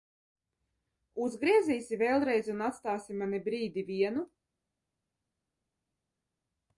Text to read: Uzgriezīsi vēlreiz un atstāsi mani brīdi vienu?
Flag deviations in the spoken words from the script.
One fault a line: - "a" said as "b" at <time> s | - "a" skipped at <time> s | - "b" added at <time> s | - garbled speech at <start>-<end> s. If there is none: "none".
none